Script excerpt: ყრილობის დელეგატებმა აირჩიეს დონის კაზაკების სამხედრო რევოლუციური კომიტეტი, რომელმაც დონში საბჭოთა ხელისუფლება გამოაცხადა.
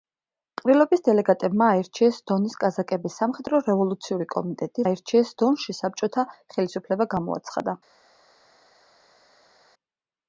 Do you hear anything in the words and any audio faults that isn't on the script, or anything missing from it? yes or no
yes